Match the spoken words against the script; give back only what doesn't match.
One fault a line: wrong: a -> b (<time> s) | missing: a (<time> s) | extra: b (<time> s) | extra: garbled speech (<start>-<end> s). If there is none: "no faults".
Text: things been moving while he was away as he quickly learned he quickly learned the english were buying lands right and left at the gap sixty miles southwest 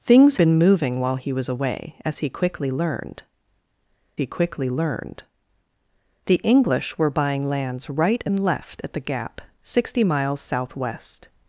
no faults